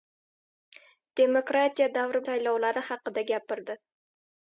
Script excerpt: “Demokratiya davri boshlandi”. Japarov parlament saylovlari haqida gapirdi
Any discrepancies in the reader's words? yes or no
yes